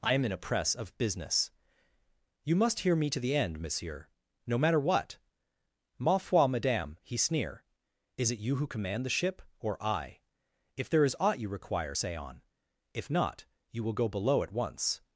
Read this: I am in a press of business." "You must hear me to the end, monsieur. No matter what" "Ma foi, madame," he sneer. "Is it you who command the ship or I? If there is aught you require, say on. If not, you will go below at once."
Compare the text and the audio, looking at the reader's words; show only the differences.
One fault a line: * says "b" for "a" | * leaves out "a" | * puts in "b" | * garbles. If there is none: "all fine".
all fine